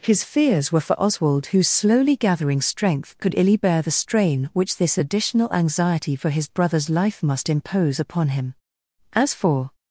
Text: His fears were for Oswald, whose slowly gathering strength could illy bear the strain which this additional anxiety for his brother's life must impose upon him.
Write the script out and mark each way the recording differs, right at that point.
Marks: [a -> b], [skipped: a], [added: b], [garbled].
His fears were for Oswald, whose slowly gathering strength could illy bear the strain which this additional anxiety for his brother's life must impose upon him. [added: As for]